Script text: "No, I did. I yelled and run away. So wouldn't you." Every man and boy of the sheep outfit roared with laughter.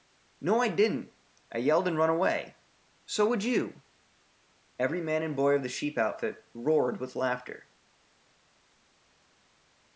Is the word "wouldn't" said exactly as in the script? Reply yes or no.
no